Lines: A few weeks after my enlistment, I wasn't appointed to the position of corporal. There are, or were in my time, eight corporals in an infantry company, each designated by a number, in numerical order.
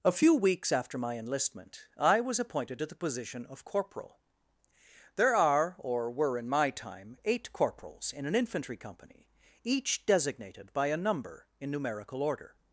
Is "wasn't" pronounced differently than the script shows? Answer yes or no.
yes